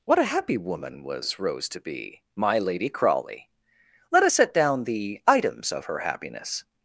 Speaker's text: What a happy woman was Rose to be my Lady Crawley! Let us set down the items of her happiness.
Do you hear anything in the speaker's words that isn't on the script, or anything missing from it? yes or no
no